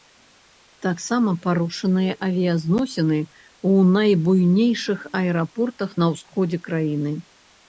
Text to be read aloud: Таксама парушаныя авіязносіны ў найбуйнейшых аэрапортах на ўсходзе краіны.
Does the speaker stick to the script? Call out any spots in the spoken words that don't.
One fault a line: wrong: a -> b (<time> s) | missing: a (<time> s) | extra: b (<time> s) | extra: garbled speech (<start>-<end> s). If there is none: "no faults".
no faults